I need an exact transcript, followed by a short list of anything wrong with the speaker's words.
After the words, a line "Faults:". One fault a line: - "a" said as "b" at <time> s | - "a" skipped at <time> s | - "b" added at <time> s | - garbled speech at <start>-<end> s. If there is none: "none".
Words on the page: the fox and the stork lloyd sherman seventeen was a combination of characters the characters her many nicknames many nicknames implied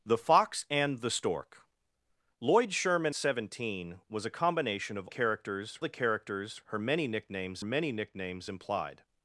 the fox and the stork lloyd sherman seventeen was a combination of characters the characters her many nicknames many nicknames implied
Faults:
none